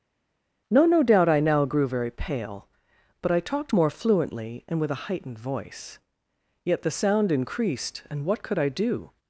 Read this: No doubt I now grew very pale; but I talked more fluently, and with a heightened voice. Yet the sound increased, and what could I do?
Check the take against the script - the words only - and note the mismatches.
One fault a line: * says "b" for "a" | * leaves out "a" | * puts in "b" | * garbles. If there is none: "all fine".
* puts in "no"